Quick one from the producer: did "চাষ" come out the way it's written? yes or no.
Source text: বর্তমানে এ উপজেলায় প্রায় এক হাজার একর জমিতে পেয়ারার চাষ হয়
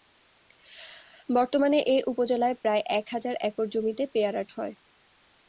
no